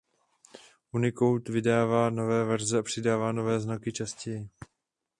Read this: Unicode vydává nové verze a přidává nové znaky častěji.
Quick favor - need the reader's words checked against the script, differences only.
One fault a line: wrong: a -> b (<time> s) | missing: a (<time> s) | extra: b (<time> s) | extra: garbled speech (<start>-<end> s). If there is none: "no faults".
no faults